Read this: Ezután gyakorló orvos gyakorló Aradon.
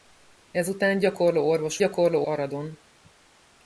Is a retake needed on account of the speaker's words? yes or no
no